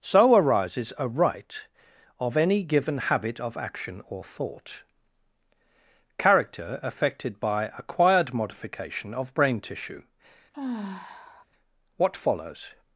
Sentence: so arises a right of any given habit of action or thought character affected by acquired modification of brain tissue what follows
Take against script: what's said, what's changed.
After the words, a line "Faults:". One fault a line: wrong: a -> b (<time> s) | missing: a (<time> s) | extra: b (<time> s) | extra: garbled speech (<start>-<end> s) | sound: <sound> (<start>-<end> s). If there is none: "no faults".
so arises a right of any given habit of action or thought character affected by acquired modification of brain tissue what follows
Faults:
sound: sigh (10.5-11.5 s)